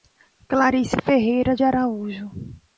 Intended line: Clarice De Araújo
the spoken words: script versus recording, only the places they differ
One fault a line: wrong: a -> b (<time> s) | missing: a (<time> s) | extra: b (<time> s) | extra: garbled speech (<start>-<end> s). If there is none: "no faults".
extra: Ferreira (1.1 s)